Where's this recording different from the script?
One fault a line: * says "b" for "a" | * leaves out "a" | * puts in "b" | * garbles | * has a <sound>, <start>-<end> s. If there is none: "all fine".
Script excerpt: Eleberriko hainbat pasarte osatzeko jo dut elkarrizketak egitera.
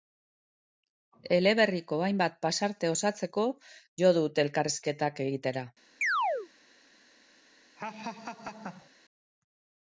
* has a chirp, 6.0-6.5 s
* has a laugh, 7.8-8.9 s